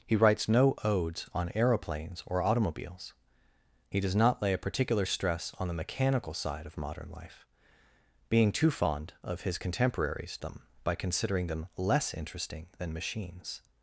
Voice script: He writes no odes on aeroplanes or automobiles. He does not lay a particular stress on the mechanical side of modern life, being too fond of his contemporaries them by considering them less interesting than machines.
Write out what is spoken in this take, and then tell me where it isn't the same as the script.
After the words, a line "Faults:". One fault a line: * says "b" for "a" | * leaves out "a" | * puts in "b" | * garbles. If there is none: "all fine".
He writes no odes on aeroplanes or automobiles. He does not lay a particular stress on the mechanical side of modern life, being too fond of his contemporaries them by considering them less interesting than machines.
Faults:
all fine